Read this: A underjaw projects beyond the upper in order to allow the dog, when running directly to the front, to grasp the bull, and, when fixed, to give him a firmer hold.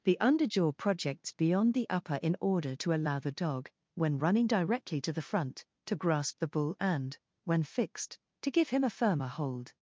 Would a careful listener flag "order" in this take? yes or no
no